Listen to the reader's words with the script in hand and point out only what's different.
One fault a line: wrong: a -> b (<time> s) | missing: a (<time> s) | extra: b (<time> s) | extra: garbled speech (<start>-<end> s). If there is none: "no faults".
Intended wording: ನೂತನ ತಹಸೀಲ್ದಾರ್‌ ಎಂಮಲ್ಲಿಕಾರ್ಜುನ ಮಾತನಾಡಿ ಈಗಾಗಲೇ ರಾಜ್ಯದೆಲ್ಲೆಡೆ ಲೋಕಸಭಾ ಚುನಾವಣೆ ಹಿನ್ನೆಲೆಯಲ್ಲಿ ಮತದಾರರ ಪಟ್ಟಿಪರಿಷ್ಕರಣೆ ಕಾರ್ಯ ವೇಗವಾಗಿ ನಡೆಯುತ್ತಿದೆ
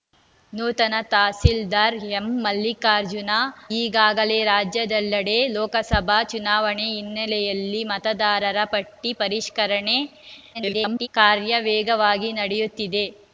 missing: ಮಾತನಾಡಿ (3.3 s)
extra: garbled speech (10.5-11.1 s)